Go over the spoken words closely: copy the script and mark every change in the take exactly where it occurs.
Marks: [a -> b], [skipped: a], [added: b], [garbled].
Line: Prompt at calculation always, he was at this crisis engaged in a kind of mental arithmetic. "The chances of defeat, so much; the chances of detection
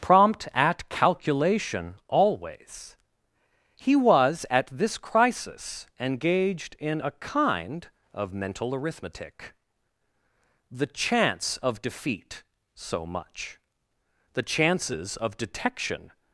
Prompt at calculation always, he was at this crisis engaged in a kind of mental arithmetic. "The [chances -> chance] of defeat, so much; the chances of detection